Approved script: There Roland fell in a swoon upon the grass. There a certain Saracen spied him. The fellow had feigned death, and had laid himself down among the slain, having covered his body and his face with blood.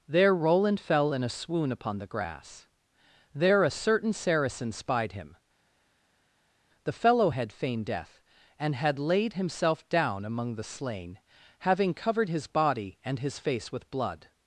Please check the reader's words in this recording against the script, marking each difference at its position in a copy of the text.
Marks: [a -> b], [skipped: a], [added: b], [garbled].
There Roland fell in a swoon upon the grass. There a certain Saracen spied him. The fellow had feigned death, and had laid himself down among the slain, having covered his body and his face with blood.